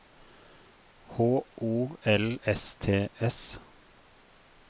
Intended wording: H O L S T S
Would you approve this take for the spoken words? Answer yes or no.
yes